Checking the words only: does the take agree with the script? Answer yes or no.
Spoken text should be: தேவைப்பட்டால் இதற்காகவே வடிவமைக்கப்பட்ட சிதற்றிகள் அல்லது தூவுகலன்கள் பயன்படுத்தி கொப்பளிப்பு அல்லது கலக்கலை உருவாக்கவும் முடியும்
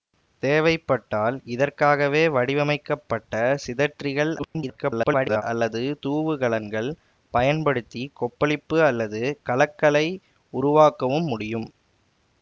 no